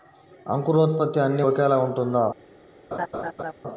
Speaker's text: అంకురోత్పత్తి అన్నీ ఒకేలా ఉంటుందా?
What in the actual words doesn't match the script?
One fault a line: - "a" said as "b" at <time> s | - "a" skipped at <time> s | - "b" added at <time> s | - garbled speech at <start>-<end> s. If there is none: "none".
none